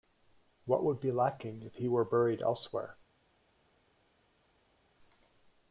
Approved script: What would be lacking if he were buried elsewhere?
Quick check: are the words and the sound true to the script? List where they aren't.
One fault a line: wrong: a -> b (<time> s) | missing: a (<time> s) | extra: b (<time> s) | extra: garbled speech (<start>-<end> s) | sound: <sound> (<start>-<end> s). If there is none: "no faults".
no faults